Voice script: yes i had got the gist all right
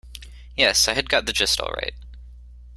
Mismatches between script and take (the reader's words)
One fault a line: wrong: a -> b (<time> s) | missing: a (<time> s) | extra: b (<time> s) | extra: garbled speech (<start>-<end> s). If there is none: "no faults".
no faults